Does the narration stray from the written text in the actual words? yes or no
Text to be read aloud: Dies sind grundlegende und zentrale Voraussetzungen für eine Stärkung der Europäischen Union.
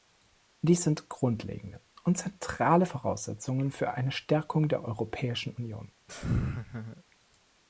no